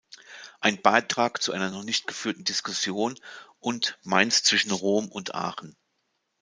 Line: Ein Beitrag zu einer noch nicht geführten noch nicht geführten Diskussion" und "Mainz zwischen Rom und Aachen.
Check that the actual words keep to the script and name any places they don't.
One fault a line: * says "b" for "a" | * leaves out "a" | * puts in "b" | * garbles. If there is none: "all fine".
* leaves out "noch nicht geführten"